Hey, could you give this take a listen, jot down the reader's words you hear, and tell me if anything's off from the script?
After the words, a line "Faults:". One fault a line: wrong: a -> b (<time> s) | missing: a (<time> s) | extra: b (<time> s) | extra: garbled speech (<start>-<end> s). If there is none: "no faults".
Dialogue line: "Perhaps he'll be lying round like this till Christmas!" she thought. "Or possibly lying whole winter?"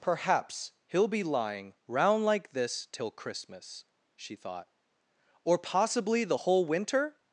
"Perhaps he'll be lying round like this till Christmas!" she thought. "Or possibly the whole winter?"
Faults:
wrong: lying -> the (6.2 s)